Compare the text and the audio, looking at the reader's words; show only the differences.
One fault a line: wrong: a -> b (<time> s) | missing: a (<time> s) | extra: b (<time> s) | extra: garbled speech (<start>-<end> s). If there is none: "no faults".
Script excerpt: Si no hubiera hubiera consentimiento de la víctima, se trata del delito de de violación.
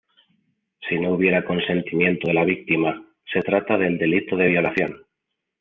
missing: hubiera (1.4 s)
missing: de (4.5 s)